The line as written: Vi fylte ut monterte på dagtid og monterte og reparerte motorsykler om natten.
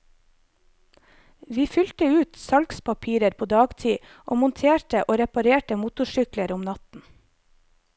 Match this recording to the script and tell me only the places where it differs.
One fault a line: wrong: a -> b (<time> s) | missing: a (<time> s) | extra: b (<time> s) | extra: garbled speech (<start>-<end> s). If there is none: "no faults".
wrong: monterte -> salgspapirer (2.5 s)